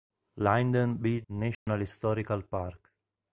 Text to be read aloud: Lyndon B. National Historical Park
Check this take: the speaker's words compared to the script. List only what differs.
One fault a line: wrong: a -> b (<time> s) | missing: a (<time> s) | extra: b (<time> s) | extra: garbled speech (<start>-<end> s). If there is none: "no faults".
no faults